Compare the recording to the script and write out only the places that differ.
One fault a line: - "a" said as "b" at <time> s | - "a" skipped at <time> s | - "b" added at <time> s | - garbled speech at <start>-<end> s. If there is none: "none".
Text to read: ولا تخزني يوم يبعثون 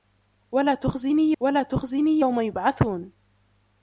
- "ولا تخزني" added at 1.4 s